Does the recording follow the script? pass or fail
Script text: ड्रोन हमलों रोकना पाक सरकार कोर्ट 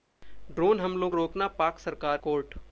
pass